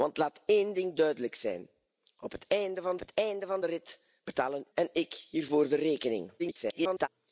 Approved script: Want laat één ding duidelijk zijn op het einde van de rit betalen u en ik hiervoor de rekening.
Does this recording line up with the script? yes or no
no